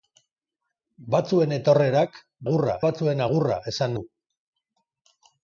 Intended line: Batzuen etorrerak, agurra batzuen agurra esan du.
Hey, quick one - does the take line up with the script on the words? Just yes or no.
yes